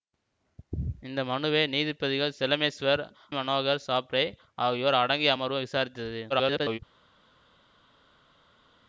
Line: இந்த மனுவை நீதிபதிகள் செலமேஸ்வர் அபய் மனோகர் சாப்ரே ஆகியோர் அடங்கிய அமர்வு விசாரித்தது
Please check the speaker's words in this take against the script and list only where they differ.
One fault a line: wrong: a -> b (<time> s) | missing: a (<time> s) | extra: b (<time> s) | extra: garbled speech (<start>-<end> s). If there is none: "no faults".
missing: அபய் (3.0 s)
extra: garbled speech (6.3-6.8 s)